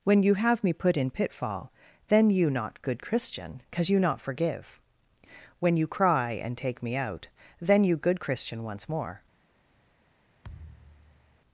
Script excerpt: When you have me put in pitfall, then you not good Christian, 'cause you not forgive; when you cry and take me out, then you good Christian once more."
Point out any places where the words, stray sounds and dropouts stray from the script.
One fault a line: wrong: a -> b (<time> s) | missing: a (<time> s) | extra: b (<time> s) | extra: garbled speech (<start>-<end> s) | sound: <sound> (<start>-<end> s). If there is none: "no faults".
sound: thud (10.4-11.4 s)